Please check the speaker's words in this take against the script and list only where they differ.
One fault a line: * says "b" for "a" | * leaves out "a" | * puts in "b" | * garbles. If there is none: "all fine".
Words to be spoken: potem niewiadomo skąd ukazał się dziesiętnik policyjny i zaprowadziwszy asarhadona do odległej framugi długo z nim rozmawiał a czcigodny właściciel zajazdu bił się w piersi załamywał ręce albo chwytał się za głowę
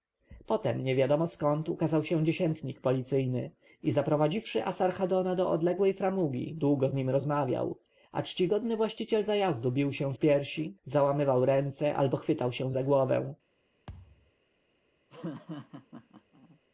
all fine